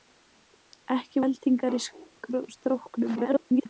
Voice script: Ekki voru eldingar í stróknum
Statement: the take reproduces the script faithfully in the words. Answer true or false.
false